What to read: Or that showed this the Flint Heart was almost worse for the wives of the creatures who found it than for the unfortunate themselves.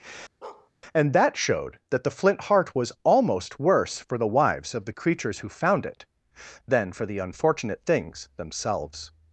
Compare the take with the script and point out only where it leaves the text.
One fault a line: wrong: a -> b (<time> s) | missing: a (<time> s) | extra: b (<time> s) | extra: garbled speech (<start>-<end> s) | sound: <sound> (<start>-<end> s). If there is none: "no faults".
sound: bark (0.4-0.7 s)
wrong: Or -> And (0.9 s)
wrong: this -> that (1.9 s)
extra: things (7.9 s)